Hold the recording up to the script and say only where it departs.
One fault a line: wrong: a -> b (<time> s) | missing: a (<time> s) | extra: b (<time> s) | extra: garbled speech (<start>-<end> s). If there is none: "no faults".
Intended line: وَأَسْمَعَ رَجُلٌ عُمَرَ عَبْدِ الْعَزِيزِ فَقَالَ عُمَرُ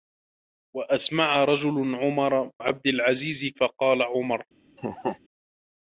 no faults